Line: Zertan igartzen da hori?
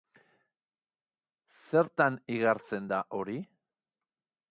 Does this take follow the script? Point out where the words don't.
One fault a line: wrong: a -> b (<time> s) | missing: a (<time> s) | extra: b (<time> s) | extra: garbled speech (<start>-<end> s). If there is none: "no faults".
no faults